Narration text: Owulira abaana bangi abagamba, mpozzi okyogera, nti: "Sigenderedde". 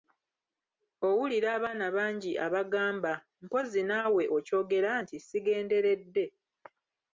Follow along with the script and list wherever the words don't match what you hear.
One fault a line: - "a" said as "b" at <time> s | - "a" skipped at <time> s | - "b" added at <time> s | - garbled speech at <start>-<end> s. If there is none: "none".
- "naawe" added at 3.9 s